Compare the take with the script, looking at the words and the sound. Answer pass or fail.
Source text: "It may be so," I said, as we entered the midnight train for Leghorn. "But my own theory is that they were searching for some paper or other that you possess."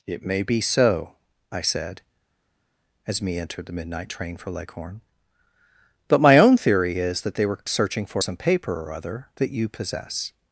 fail